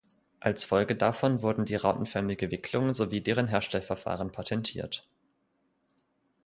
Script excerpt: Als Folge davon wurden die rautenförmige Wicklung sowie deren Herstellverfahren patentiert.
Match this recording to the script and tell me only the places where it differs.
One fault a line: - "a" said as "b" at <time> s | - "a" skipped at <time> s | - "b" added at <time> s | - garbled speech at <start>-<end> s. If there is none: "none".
none